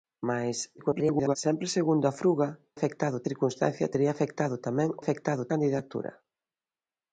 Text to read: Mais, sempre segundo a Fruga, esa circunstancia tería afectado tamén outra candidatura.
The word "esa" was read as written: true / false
false